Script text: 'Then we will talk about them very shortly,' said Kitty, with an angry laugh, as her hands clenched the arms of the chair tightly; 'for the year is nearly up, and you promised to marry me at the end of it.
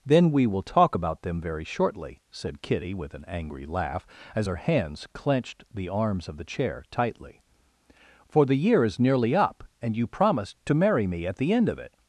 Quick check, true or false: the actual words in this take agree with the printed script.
true